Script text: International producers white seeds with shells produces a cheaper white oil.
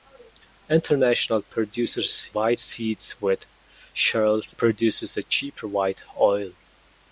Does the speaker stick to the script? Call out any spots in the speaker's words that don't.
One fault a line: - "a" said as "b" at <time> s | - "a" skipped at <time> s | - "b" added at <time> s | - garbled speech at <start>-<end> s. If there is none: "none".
none